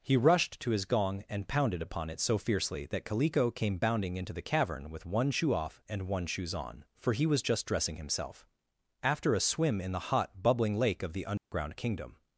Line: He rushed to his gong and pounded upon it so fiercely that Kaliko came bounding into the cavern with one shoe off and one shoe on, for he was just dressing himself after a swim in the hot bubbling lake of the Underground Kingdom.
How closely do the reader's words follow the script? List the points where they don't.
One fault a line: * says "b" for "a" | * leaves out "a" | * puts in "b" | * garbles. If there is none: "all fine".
* says "shoes" for "shoe"